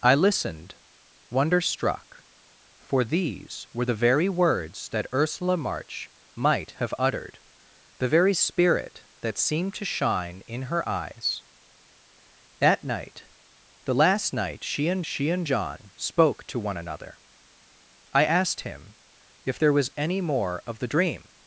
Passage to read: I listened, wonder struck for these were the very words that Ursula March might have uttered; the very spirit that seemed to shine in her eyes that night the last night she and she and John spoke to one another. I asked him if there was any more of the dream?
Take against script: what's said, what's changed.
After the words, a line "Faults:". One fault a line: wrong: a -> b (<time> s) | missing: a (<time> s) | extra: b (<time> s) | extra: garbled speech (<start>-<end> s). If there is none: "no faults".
I listened, wonder struck for these were the very words that Ursula March might have uttered; the very spirit that seemed to shine in her eyes that night the last night she and she and John spoke to one another. I asked him if there was any more of the dream?
Faults:
no faults